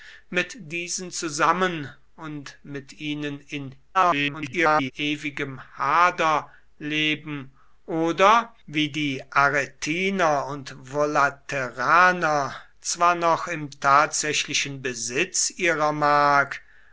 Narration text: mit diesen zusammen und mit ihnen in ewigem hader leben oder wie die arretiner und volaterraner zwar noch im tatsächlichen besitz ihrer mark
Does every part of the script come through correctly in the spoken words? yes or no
no